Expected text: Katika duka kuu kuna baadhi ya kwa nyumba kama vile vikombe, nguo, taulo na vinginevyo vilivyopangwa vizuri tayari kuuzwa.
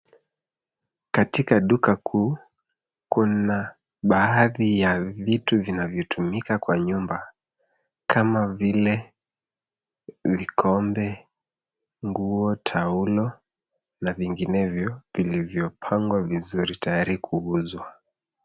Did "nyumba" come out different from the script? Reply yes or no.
no